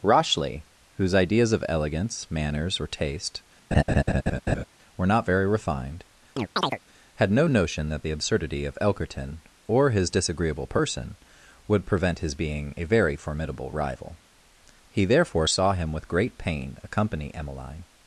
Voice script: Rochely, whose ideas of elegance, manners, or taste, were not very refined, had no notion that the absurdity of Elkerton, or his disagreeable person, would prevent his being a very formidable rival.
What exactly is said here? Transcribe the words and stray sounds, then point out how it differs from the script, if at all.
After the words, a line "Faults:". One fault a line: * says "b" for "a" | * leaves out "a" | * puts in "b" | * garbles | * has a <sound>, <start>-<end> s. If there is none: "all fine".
Rochely, whose ideas of elegance, manners, or taste, were not very refined, had no notion that the absurdity of Elkerton, or his disagreeable person, would prevent his being a very formidable rival. He therefore saw him with great pain accompany Emmeline
Faults:
* has a laugh, 3.7-4.6 s
* has a chirp, 6.4-6.8 s
* puts in "He therefore saw him with great pain accompany Emmeline"